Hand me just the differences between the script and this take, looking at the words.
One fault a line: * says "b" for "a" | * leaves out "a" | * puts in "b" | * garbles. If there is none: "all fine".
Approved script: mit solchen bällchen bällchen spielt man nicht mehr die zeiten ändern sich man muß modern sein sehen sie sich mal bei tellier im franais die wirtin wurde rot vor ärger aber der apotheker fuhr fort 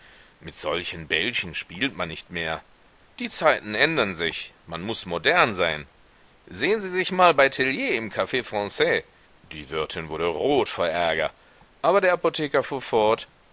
* leaves out "bällchen"
* puts in "caf"